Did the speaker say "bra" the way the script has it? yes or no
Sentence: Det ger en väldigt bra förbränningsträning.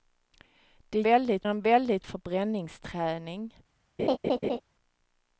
no